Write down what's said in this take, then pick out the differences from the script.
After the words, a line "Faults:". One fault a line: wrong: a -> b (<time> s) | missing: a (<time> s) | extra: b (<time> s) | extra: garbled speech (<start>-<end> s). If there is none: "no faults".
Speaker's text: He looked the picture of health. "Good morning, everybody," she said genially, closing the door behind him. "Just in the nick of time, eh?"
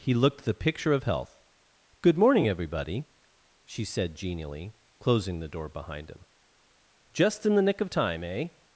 He looked the picture of health. "Good morning, everybody," she said genially, closing the door behind him. "Just in the nick of time, eh?"
Faults:
no faults